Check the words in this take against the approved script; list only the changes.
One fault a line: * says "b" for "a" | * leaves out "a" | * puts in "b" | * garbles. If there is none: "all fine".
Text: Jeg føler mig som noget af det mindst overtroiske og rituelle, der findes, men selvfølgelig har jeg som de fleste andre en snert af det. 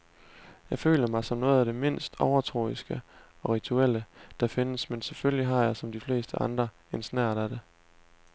all fine